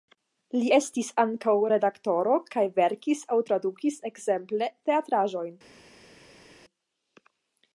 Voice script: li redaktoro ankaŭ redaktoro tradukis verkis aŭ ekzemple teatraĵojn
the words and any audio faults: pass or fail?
fail